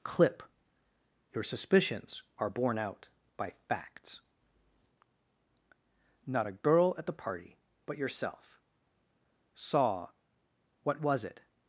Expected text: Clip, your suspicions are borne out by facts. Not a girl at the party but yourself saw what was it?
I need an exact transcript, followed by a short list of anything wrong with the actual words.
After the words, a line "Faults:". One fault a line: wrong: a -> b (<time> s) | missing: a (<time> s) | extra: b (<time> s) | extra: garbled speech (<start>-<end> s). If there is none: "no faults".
Clip, your suspicions are borne out by facts. Not a girl at the party but yourself saw what was it?
Faults:
no faults